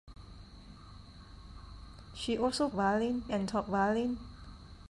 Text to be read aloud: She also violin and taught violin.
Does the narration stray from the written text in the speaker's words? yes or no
no